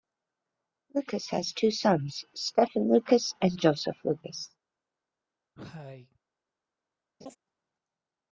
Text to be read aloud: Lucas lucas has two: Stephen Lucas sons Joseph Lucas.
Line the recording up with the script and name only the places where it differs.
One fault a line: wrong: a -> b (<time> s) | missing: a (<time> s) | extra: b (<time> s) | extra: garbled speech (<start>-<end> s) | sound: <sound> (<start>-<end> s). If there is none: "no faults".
missing: lucas (1.3 s)
extra: sons (1.7 s)
wrong: sons -> and (3.4 s)
sound: cough (5.5-6.2 s)
sound: laugh (7.2-7.4 s)